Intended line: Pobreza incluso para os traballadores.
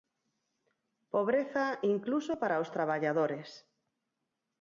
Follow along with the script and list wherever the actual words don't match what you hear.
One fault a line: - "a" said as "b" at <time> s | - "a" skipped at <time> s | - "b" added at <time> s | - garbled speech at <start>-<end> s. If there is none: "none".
none